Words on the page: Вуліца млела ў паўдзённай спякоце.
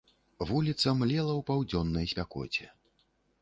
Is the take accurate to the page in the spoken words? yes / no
yes